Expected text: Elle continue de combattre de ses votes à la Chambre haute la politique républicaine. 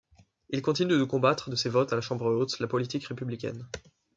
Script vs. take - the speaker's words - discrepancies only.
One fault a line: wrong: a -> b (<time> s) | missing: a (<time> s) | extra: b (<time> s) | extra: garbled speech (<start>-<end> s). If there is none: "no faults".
wrong: Elle -> Il (0.5 s)